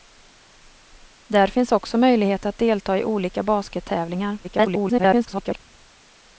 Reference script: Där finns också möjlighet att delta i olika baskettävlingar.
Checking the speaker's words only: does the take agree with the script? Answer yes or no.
no